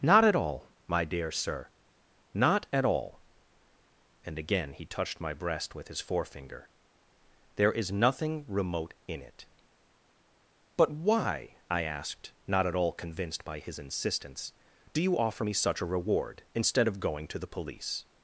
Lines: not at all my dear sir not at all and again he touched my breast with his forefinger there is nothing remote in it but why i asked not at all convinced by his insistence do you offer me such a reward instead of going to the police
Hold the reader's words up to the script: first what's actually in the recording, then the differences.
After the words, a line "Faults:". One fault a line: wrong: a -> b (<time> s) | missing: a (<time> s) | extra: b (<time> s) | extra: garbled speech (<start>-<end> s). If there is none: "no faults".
not at all my dear sir not at all and again he touched my breast with his forefinger there is nothing remote in it but why i asked not at all convinced by his insistence do you offer me such a reward instead of going to the police
Faults:
no faults